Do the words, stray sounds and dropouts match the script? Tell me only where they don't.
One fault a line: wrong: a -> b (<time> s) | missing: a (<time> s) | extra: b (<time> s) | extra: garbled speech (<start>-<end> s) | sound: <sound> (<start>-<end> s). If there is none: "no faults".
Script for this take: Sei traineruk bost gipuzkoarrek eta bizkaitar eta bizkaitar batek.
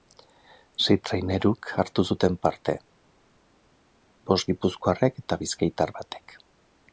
extra: hartu zuten parte (1.8 s)
missing: eta bizkaitar (5.9 s)